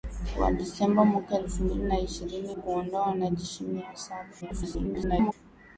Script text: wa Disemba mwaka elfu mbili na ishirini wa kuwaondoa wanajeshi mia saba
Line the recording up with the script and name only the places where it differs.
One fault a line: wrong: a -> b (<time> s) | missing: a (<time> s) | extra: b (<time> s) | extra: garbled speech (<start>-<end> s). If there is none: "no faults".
missing: wa (2.5 s)
extra: garbled speech (4.4-5.3 s)